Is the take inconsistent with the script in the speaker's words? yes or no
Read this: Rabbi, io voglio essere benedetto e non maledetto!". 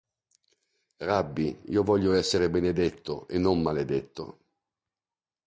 no